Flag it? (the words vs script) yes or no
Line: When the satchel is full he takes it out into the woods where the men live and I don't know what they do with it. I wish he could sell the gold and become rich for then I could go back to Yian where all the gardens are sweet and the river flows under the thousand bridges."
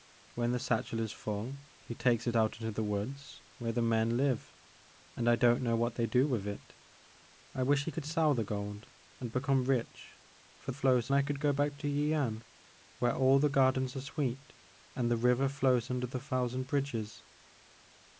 yes